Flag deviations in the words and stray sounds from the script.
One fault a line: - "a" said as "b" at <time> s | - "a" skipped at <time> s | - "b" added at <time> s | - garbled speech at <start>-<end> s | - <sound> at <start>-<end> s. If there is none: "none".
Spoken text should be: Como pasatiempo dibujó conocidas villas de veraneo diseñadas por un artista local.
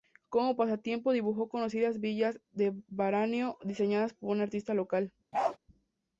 - bark at 5.3-5.6 s